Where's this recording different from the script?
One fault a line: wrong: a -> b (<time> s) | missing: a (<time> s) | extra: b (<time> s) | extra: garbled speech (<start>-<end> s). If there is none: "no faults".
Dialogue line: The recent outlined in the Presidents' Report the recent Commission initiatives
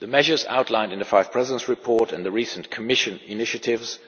wrong: recent -> measures (0.1 s)
extra: Five (1.1 s)
extra: and (2.1 s)